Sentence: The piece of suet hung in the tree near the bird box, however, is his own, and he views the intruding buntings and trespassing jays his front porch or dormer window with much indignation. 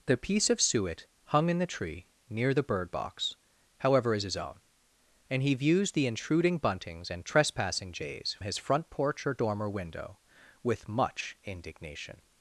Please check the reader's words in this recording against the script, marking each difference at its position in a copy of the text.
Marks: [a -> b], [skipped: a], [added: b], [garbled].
The piece of suet hung in the tree near the bird box, however, is his own, and he views the intruding buntings and trespassing jays his front porch or dormer window with much indignation.